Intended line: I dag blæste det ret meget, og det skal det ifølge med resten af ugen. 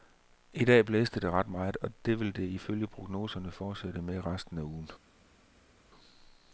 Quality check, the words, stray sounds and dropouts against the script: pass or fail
fail